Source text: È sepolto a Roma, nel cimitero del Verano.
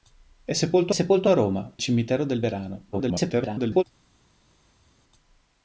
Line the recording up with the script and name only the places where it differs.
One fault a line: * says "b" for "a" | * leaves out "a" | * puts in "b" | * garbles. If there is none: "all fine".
* puts in "sepolto"
* leaves out "nel"
* garbles